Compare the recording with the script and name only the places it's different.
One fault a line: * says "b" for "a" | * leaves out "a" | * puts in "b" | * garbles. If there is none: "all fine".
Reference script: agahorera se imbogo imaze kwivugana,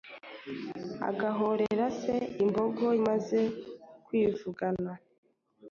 all fine